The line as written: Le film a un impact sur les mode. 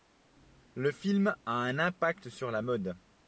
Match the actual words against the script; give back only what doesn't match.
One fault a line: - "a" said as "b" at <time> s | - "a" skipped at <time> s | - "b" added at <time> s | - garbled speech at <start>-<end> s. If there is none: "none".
- "les" said as "la" at 2.5 s